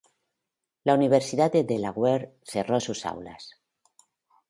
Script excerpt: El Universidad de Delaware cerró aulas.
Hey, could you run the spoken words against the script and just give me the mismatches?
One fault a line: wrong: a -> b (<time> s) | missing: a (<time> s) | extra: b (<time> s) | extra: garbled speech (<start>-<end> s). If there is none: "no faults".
wrong: El -> La (0.8 s)
extra: sus (2.8 s)